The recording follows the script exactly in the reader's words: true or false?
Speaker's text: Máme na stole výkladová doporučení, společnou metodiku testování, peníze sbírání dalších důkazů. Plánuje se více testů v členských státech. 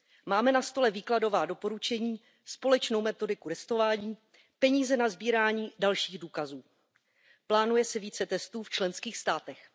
false